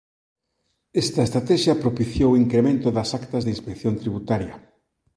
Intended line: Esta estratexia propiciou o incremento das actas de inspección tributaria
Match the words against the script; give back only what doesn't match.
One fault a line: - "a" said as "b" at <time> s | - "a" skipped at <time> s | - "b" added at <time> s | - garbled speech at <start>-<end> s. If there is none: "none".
none